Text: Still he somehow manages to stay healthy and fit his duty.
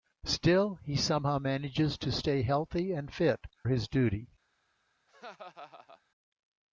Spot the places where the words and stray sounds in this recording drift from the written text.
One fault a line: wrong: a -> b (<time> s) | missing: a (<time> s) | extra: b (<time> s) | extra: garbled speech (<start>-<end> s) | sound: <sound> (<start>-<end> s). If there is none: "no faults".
sound: laugh (5.1-6.0 s)